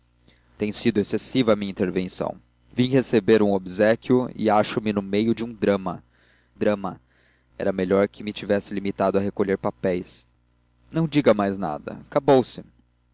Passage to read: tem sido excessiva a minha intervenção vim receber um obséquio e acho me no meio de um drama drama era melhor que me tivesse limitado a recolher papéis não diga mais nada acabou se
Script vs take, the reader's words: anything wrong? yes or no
no